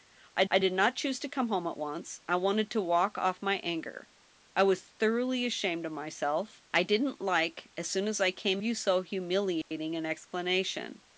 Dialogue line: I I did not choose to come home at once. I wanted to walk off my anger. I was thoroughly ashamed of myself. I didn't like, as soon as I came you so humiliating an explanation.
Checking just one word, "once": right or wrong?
right